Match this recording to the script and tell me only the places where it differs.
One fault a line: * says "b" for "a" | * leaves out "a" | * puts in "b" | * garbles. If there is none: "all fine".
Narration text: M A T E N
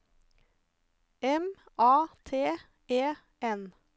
all fine